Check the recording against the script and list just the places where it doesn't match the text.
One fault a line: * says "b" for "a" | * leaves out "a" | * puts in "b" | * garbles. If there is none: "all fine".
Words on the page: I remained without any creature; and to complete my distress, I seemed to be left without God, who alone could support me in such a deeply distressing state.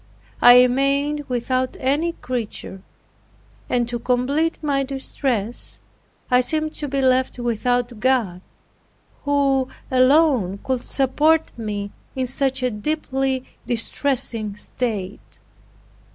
all fine